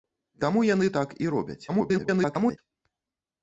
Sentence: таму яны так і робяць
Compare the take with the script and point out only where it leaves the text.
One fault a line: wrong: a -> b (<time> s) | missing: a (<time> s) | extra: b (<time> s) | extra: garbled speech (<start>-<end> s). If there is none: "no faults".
extra: garbled speech (1.7-2.6 s)